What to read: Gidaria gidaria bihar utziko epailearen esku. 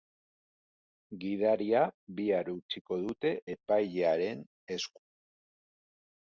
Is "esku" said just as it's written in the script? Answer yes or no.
yes